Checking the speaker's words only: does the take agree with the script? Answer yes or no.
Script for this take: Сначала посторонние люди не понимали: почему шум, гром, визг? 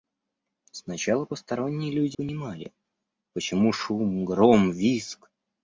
no